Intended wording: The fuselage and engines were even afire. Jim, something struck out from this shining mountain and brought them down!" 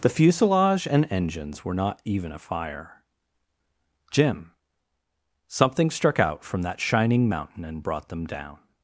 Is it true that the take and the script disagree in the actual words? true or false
true